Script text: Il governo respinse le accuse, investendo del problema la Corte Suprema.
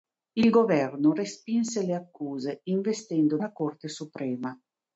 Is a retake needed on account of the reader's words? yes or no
yes